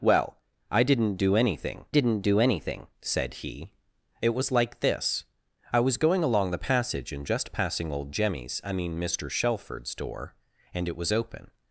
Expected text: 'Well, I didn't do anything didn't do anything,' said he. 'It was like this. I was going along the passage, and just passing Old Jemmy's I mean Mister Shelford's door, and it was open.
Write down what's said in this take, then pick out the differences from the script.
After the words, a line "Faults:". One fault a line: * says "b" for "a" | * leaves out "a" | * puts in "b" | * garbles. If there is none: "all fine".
'Well, I didn't do anything didn't do anything,' said he. 'It was like this. I was going along the passage, and just passing Old Jemmy's I mean Mister Shelford's door, and it was open.
Faults:
all fine